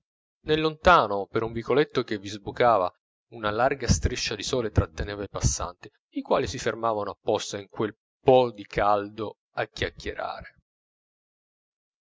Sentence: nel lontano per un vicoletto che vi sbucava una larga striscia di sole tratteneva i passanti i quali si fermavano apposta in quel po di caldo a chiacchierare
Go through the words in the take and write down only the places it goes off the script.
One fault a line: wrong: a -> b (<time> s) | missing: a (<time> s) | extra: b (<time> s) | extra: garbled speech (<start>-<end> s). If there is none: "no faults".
no faults